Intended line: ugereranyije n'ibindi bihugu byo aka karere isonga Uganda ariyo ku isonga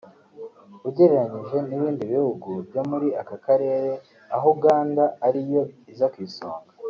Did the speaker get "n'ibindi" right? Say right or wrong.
right